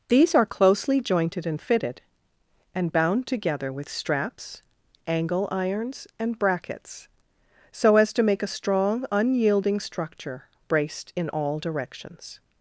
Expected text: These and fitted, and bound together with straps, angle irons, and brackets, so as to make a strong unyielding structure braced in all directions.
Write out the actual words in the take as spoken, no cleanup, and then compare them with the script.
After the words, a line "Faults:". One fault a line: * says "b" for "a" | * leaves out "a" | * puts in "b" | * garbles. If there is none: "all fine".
These are closely jointed and fitted, and bound together with straps, angle irons, and brackets, so as to make a strong unyielding structure braced in all directions.
Faults:
* puts in "are closely jointed"